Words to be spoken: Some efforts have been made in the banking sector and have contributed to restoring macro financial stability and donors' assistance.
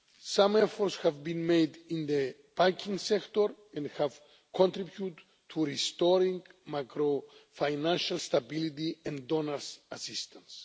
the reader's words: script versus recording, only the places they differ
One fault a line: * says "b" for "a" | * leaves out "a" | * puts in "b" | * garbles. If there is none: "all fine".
all fine